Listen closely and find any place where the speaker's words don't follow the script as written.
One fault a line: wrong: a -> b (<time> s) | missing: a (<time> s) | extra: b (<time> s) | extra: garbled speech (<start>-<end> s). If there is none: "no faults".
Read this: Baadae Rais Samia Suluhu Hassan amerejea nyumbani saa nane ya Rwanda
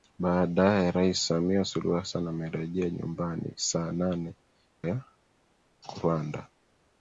no faults